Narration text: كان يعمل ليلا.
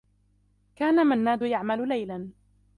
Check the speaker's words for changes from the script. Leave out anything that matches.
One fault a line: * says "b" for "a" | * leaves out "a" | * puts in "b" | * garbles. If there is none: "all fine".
* puts in "منّاد"